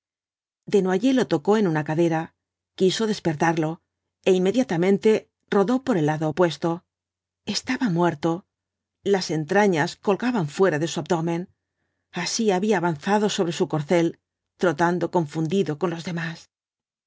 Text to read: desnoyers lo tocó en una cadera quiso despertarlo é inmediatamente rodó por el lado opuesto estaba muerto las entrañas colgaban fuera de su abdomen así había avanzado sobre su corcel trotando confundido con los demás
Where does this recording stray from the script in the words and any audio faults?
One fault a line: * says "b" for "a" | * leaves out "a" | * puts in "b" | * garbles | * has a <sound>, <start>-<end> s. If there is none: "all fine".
all fine